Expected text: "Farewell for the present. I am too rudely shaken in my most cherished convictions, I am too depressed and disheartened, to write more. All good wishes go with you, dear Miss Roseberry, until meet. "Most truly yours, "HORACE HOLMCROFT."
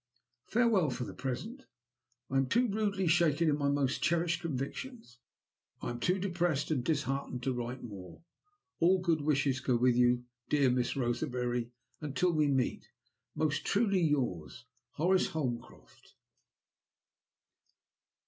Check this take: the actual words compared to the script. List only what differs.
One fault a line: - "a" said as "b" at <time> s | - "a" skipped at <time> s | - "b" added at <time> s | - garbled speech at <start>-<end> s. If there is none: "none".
- "we" added at 12.3 s